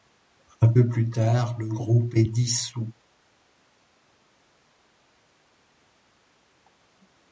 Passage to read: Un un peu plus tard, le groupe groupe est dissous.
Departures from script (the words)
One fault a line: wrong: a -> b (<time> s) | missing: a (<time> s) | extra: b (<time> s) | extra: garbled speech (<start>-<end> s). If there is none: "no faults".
missing: un (0.7 s)
missing: groupe (2.1 s)